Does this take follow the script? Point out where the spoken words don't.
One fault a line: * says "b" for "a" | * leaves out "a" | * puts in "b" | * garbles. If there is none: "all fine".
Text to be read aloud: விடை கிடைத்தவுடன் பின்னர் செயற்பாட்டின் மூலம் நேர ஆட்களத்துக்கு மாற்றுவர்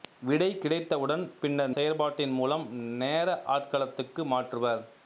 all fine